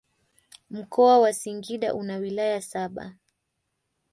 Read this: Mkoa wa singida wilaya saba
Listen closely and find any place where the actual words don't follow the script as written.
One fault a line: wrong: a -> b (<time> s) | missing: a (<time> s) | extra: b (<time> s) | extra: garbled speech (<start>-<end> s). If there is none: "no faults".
extra: una (1.9 s)